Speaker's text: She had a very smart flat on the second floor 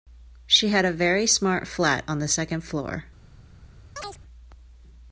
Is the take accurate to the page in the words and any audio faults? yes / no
no